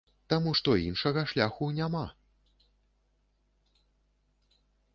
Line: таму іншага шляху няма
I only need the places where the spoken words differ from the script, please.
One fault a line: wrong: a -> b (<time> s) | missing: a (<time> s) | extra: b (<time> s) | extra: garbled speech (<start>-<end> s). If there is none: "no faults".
extra: што (0.6 s)